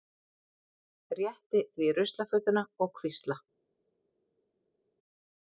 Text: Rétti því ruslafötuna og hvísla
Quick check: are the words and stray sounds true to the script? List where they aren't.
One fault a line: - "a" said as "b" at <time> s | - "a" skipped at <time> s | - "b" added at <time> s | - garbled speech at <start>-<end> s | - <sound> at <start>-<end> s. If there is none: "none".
none